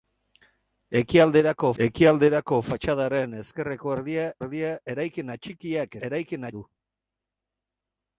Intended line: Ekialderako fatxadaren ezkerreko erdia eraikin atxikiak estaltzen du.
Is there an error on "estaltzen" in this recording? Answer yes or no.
yes